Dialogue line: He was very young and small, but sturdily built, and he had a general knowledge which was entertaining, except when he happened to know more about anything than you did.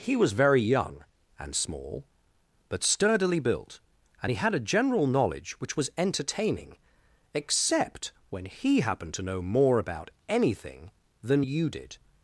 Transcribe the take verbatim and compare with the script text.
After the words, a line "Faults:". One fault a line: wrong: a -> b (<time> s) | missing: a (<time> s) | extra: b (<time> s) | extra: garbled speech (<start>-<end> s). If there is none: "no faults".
He was very young and small, but sturdily built, and he had a general knowledge which was entertaining, except when he happened to know more about anything than you did.
Faults:
no faults